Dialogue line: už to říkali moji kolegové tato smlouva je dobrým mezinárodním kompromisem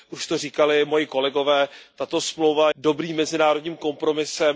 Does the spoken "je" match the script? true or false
false